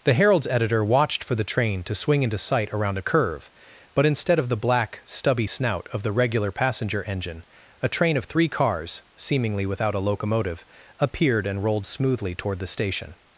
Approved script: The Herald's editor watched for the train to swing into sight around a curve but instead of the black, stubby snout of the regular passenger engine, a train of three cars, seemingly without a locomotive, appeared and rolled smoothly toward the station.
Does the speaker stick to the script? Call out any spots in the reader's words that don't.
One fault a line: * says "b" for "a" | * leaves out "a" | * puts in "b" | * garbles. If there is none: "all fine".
all fine